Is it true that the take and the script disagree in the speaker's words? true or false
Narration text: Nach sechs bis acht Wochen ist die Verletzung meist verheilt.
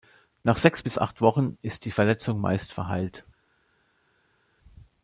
false